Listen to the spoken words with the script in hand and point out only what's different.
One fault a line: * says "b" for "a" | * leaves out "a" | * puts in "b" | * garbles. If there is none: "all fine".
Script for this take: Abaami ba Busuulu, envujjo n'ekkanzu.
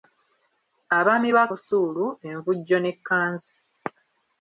all fine